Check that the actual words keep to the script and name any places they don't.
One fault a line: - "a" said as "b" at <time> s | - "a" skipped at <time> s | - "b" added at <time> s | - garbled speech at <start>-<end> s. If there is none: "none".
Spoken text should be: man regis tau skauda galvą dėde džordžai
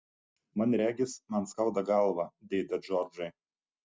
- "tau" said as "man" at 1.3 s